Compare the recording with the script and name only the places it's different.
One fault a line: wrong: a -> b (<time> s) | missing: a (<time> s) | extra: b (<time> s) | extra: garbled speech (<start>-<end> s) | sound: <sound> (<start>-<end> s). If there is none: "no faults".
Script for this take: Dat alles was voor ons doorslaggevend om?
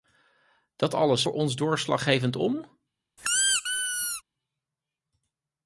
missing: was (1.2 s)
sound: squeak (3.2-4.2 s)